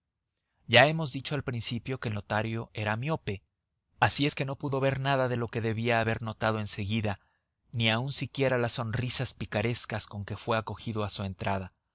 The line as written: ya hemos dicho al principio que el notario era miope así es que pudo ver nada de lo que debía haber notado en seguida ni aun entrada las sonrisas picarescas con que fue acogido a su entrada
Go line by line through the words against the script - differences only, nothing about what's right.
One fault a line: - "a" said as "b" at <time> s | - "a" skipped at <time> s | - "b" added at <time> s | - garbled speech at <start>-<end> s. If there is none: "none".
- "no" added at 4.4 s
- "entrada" said as "siquiera" at 8.1 s